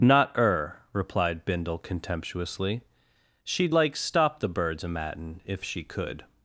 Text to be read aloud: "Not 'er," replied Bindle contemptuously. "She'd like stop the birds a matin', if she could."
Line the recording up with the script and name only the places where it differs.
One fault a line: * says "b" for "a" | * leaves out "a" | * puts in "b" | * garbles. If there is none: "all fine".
all fine